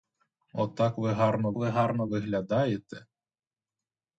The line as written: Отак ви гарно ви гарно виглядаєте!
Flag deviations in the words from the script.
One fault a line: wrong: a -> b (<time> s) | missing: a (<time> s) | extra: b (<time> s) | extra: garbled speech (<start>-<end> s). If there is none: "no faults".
no faults